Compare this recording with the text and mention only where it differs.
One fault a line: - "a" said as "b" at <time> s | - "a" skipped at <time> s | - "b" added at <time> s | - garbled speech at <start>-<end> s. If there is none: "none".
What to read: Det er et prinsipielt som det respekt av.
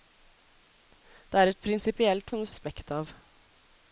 none